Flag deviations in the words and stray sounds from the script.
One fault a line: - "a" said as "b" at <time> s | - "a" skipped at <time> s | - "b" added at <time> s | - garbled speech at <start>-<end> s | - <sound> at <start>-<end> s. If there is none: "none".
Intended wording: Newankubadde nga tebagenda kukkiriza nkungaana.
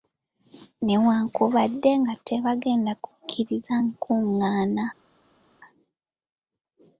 none